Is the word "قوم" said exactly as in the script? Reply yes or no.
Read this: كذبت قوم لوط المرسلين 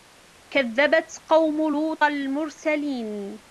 yes